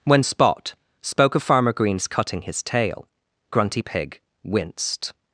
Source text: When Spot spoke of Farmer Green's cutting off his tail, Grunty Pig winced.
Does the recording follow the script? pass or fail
fail